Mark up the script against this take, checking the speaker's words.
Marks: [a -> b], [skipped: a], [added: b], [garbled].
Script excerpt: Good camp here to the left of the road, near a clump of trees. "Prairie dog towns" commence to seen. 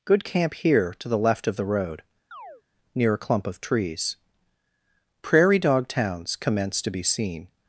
Good camp here to the left of the road, near a clump of trees. "Prairie dog towns" commence to [added: be] seen.